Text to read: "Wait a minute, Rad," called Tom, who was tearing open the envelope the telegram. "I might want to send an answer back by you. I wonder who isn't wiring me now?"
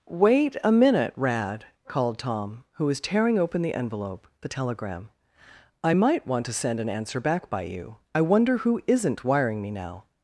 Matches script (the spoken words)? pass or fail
pass